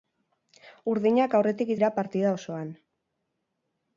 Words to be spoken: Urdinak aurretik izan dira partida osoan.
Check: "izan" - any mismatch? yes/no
yes